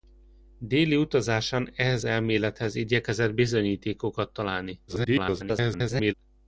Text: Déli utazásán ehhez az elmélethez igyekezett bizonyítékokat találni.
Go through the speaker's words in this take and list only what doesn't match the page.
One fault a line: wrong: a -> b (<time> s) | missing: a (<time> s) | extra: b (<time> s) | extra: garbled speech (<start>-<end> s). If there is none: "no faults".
missing: az (2.0 s)
extra: garbled speech (4.9-6.1 s)